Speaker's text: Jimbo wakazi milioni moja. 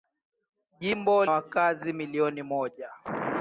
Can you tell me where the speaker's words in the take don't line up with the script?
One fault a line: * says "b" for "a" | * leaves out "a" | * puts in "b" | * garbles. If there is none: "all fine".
all fine